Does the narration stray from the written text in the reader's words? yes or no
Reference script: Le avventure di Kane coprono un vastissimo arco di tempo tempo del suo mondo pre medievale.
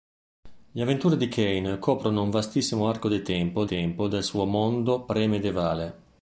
no